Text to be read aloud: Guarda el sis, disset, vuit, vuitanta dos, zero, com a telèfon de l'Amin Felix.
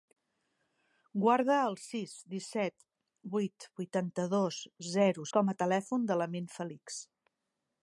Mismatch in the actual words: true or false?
false